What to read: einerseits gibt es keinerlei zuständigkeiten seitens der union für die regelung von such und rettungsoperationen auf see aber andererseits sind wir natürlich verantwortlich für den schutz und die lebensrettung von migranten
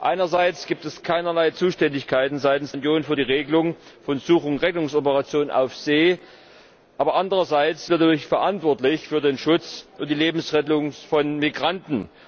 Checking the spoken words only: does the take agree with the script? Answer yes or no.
no